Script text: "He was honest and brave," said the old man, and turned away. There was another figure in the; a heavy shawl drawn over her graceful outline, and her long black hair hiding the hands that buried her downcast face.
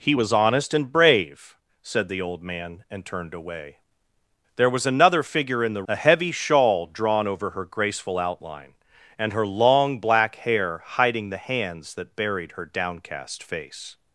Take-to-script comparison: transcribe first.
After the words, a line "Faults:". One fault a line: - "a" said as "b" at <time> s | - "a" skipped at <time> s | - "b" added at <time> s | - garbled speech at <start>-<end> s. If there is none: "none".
"He was honest and brave," said the old man, and turned away. There was another figure in the; a heavy shawl drawn over her graceful outline, and her long black hair hiding the hands that buried her downcast face.
Faults:
none